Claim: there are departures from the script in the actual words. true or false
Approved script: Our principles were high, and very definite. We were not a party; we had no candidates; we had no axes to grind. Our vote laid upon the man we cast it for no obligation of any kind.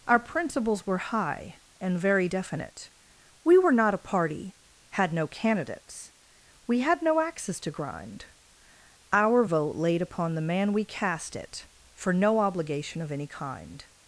true